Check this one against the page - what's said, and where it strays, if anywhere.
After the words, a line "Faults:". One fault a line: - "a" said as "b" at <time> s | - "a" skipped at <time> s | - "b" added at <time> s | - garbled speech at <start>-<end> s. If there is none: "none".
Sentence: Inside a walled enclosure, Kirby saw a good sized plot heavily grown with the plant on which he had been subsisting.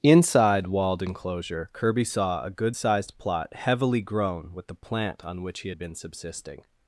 Inside walled enclosure, Kirby saw a good sized plot heavily grown with the plant on which he had been subsisting.
Faults:
- "a" skipped at 0.7 s